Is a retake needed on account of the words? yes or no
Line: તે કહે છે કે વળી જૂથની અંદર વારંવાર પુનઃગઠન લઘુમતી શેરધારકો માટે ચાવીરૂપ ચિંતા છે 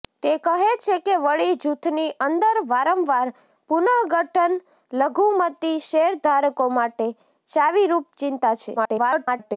yes